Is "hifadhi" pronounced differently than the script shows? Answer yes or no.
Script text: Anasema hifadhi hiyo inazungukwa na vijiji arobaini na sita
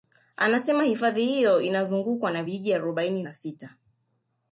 no